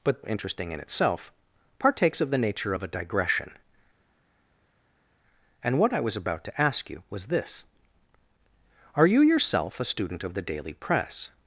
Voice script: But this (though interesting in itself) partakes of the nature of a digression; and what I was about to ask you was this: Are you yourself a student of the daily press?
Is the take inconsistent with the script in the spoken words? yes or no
yes